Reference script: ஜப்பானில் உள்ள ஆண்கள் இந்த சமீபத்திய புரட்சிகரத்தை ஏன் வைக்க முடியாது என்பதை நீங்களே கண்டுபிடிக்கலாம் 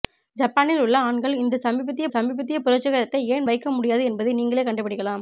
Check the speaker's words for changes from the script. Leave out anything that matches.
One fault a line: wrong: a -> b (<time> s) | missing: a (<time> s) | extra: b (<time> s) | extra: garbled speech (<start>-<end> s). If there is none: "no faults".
extra: சமீபத்திய (2.1 s)